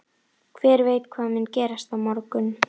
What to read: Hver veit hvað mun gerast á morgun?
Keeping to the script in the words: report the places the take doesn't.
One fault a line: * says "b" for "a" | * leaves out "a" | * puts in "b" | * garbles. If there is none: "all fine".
all fine